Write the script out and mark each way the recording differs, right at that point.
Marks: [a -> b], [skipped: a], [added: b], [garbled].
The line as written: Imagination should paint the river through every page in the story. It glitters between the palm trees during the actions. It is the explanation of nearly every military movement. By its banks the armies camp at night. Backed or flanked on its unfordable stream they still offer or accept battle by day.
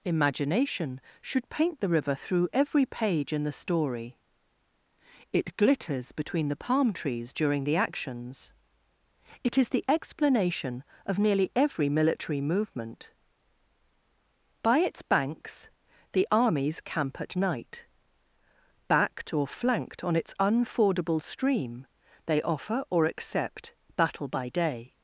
Imagination should paint the river through every page in the story. It glitters between the palm trees during the actions. It is the explanation of nearly every military movement. By its banks the armies camp at night. Backed or flanked on its unfordable stream they [skipped: still] offer or accept battle by day.